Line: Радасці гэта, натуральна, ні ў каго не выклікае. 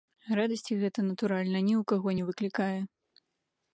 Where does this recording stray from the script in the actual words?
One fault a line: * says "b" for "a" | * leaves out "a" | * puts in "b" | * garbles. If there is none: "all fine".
all fine